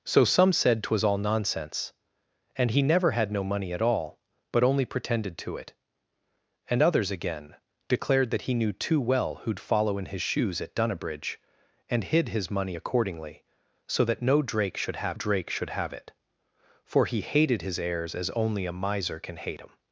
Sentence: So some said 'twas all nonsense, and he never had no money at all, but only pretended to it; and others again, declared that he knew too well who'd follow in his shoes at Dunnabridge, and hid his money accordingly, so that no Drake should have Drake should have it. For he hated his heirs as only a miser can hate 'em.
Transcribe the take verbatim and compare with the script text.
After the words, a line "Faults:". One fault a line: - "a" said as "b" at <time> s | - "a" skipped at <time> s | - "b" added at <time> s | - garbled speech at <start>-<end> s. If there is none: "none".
So some said 'twas all nonsense, and he never had no money at all, but only pretended to it; and others again, declared that he knew too well who'd follow in his shoes at Dunnabridge, and hid his money accordingly, so that no Drake should have Drake should have it. For he hated his heirs as only a miser can hate 'em.
Faults:
none